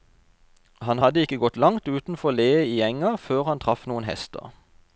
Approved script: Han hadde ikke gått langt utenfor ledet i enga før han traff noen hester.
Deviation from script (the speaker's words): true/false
false